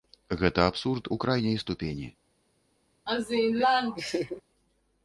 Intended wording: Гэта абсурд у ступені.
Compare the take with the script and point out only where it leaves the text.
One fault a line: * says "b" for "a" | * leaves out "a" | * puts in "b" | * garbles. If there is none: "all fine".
* puts in "крайняй"